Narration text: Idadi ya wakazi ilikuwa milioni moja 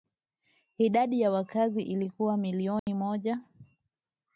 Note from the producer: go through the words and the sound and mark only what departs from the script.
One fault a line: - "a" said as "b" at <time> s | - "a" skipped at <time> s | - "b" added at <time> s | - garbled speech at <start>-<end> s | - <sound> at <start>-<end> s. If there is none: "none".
- dropout at 2.8-2.9 s